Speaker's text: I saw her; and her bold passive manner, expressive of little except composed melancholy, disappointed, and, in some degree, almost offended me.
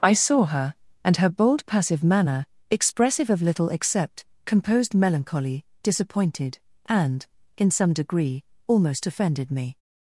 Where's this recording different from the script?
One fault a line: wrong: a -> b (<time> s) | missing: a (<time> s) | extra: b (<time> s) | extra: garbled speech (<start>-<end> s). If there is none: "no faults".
no faults